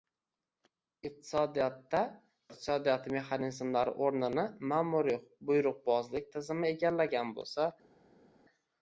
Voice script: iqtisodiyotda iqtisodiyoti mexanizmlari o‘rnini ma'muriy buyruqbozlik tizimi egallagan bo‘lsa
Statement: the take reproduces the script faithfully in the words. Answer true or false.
true